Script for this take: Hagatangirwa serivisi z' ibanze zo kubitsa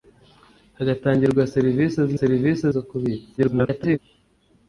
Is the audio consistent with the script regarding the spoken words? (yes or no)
no